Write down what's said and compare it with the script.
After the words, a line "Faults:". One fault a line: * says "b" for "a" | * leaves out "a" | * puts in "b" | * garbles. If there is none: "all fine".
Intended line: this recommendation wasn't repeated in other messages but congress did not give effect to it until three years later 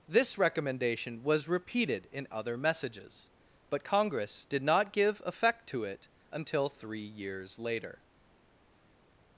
this recommendation was repeated in other messages but congress did not give effect to it until three years later
Faults:
* says "was" for "wasn't"